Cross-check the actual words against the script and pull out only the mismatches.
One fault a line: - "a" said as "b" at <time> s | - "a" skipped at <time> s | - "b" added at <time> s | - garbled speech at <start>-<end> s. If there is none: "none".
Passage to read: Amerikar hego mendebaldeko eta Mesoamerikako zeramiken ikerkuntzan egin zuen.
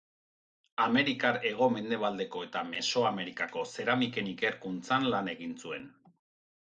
- "lan" added at 5.2 s